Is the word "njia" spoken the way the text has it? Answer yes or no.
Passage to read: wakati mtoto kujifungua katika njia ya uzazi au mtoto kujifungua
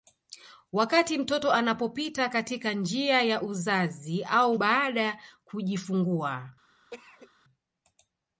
yes